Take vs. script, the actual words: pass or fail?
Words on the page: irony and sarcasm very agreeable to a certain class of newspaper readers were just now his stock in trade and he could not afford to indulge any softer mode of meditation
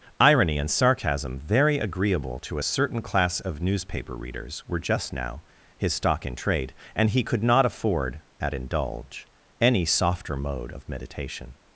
fail